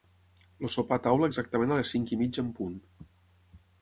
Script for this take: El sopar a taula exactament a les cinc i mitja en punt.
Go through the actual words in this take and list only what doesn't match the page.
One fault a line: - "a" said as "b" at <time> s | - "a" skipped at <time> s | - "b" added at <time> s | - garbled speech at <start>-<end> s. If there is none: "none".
none